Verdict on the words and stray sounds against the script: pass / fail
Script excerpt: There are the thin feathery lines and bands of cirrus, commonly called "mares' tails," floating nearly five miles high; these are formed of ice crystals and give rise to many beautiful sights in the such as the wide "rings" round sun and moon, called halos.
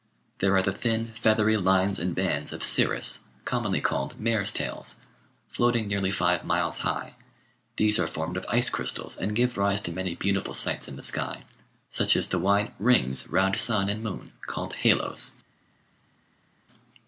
fail